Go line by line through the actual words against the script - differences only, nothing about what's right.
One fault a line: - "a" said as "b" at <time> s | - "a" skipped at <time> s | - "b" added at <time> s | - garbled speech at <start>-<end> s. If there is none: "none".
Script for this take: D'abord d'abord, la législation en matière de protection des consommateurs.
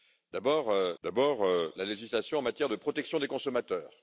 none